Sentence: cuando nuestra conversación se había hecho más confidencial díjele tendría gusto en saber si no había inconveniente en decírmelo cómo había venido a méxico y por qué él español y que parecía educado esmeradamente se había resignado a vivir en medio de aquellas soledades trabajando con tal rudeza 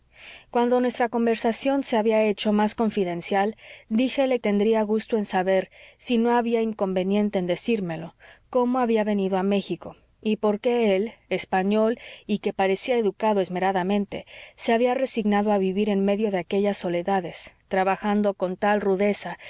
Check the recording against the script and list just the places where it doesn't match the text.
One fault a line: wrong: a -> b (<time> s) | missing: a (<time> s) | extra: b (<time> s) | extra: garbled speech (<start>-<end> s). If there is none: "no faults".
no faults